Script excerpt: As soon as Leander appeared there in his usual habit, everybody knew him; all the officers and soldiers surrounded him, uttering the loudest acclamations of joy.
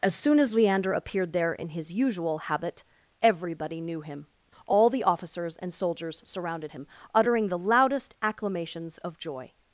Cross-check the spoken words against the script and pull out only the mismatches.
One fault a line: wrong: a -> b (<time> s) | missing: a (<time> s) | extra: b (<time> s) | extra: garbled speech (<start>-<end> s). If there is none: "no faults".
no faults